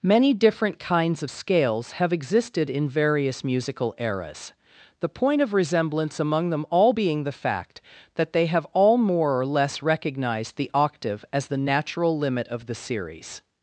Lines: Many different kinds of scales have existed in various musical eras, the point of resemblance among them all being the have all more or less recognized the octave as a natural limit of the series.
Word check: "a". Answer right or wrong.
wrong